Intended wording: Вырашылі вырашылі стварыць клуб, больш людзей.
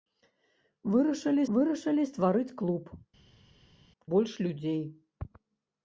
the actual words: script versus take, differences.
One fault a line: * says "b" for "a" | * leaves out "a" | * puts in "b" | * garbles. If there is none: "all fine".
all fine